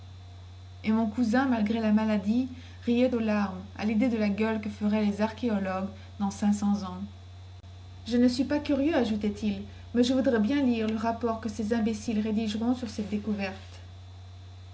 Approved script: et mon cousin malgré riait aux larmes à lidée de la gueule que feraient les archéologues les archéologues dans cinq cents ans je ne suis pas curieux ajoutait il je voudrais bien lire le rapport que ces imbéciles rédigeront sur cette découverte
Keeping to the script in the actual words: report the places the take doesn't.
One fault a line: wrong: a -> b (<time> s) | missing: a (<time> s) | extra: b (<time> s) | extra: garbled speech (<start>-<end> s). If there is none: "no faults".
extra: la maladie (1.8 s)
missing: les archéologues (5.9 s)
extra: mais (9.9 s)